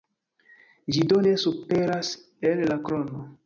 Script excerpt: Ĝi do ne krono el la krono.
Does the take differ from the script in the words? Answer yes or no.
yes